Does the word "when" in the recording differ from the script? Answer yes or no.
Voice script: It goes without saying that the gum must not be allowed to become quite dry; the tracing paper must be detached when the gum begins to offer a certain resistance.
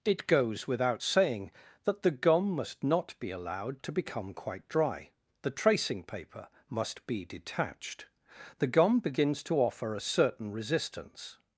yes